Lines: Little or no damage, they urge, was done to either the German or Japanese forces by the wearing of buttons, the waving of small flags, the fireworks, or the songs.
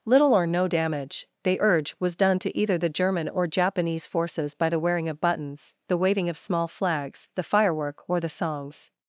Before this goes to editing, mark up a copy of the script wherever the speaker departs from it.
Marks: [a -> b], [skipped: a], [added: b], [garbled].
Little or no damage, they urge, was done to either the German or Japanese forces by the wearing of buttons, the waving of small flags, the [fireworks, -> firework] or the songs.